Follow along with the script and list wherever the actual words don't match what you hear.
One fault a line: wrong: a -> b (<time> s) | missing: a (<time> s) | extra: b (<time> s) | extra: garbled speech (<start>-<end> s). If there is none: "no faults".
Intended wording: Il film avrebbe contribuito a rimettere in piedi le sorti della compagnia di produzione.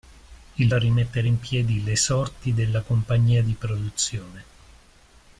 missing: film avrebbe contribuito (0.7 s)